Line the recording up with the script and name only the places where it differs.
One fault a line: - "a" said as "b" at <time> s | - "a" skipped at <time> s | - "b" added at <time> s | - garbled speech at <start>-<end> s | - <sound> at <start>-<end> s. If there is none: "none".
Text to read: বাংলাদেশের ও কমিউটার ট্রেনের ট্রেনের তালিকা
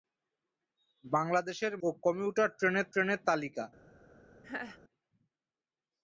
- laugh at 4.4-4.8 s